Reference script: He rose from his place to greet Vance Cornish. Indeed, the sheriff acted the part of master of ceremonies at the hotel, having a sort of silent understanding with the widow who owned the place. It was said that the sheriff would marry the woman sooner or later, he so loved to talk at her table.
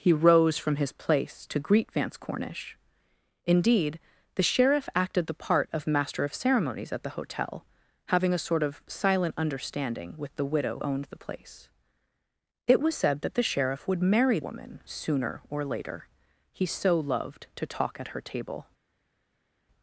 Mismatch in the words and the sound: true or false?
true